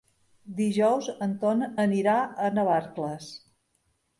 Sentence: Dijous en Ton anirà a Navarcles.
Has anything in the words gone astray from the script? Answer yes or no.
no